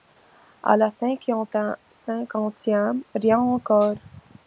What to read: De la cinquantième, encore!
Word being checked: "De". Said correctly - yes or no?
no